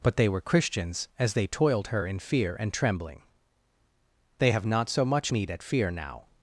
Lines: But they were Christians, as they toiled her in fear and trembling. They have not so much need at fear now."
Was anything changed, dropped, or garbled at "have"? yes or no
no